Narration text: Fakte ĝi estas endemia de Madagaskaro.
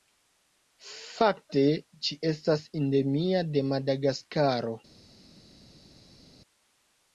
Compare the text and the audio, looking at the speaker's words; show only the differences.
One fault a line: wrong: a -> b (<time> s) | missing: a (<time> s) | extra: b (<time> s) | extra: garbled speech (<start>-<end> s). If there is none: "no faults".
no faults